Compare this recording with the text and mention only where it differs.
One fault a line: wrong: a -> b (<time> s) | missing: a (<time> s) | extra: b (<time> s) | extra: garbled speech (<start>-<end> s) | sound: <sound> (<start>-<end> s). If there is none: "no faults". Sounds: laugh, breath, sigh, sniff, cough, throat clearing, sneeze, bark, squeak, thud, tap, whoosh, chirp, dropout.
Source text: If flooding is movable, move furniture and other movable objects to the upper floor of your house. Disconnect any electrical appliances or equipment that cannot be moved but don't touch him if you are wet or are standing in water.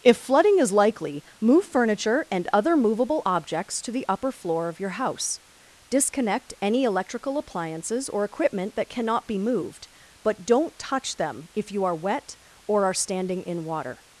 wrong: movable -> likely (0.7 s)
wrong: him -> them (11.2 s)